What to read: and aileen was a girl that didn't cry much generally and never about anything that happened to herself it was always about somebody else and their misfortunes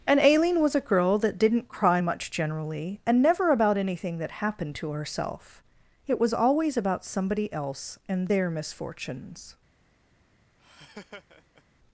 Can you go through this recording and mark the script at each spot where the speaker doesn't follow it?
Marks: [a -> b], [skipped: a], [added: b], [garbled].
and aileen was a girl that didn't cry much generally and never about anything that happened to herself it was always about somebody else and their misfortunes